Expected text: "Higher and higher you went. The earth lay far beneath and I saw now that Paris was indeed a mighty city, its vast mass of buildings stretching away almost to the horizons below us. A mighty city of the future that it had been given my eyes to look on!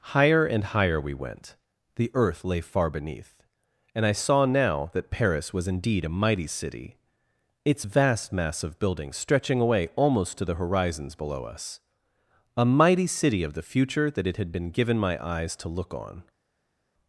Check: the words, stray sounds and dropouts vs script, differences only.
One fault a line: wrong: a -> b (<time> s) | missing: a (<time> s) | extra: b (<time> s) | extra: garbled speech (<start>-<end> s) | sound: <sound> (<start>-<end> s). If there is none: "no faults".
wrong: you -> we (1.0 s)